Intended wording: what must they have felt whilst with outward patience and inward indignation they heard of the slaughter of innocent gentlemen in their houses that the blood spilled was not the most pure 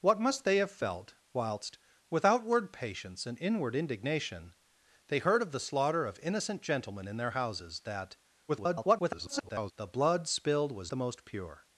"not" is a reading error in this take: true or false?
true